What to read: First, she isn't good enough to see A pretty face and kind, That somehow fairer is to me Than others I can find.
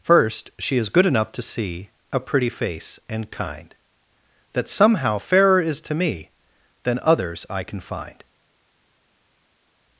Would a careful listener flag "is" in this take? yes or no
no